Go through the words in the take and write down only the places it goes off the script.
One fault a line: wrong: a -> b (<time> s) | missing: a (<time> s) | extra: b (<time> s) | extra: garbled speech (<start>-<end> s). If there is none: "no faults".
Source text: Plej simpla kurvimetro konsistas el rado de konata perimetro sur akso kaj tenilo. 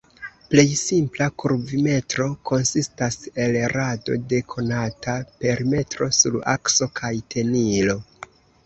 no faults